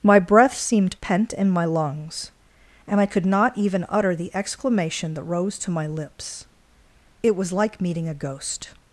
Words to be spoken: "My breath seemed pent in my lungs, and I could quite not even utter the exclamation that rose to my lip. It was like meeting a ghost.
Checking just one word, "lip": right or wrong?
wrong